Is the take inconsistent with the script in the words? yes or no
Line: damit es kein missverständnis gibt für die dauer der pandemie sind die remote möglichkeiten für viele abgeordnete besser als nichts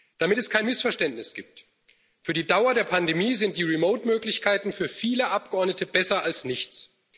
no